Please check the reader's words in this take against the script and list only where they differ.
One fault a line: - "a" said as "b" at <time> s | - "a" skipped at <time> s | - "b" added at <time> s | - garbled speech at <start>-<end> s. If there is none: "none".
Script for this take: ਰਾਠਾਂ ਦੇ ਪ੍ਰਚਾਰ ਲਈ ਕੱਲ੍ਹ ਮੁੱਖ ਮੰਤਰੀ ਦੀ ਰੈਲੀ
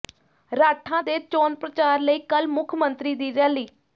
- "ਚੋਣ" added at 1.2 s